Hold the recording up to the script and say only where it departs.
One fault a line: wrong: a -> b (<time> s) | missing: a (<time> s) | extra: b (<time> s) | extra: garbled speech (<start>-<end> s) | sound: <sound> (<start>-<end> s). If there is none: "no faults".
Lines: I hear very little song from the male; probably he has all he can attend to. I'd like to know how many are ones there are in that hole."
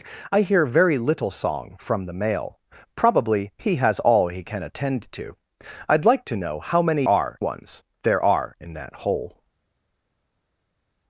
no faults